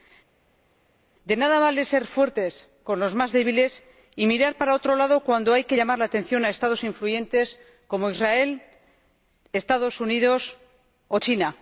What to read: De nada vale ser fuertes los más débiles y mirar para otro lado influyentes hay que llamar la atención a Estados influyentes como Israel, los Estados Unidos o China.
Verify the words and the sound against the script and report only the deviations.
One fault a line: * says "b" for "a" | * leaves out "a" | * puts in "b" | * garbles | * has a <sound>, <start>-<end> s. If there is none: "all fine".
* puts in "con"
* says "cuando" for "influyentes"